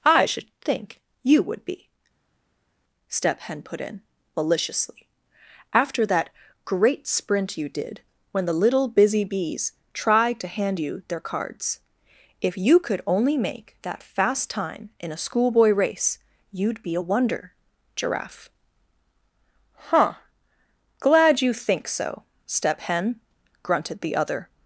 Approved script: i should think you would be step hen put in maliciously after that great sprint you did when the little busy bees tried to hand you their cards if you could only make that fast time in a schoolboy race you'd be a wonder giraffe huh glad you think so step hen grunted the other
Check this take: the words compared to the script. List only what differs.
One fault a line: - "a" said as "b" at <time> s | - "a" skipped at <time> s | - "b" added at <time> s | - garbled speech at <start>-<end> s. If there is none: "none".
none